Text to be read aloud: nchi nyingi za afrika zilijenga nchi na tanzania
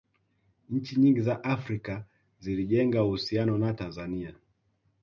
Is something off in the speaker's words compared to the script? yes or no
yes